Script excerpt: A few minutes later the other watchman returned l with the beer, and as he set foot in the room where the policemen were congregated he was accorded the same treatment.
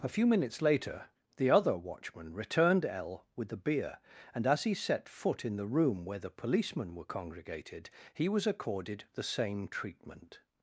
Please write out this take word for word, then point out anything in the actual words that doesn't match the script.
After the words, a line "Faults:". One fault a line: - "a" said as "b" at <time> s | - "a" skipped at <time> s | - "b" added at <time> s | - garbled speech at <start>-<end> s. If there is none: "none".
A few minutes later the other watchman returned l with the beer, and as he set foot in the room where the policemen were congregated he was accorded the same treatment.
Faults:
none